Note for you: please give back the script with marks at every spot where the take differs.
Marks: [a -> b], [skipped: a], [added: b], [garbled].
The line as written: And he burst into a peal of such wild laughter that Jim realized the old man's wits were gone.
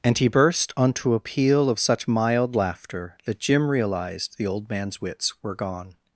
And he burst [into -> onto] a peal of such [wild -> mild] laughter that Jim realized the old man's wits were gone.